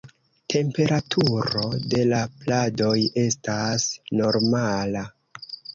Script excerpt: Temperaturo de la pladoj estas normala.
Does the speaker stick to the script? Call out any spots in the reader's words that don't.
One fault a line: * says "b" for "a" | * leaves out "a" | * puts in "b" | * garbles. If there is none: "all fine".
all fine